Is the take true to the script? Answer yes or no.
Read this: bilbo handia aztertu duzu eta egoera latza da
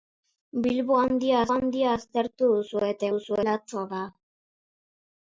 no